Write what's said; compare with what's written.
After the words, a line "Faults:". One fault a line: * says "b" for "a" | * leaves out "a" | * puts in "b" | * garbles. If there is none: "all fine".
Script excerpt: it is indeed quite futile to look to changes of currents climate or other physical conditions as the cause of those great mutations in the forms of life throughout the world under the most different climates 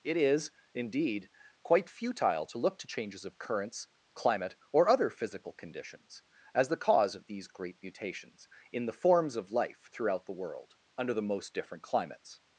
it is indeed quite futile to look to changes of currents climate or other physical conditions as the cause of these great mutations in the forms of life throughout the world under the most different climates
Faults:
* says "these" for "those"